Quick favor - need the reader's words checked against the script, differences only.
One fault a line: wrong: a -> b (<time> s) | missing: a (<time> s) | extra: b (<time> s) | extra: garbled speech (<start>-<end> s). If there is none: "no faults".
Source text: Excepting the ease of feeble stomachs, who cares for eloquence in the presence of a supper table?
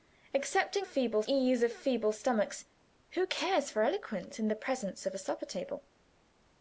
wrong: the -> feeble (0.8 s)